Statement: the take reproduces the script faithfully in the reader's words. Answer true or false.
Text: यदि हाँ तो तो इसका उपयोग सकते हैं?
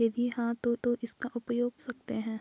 true